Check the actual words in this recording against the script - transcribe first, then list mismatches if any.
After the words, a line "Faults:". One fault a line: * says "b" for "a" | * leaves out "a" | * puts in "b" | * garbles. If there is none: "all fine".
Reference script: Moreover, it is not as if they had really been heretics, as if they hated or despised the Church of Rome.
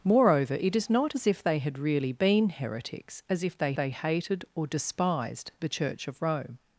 Moreover, it is not as if they had really been heretics, as if they they hated or despised the Church of Rome.
Faults:
* puts in "they"